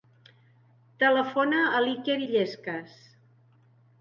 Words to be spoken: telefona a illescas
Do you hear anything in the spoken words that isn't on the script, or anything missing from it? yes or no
yes